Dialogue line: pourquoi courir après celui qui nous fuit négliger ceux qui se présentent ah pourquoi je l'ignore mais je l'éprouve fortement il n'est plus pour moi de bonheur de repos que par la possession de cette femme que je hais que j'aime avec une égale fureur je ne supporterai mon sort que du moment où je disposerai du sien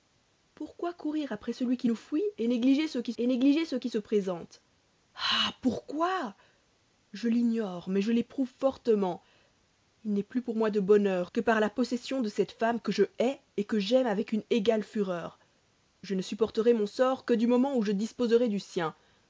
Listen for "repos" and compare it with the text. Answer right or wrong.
wrong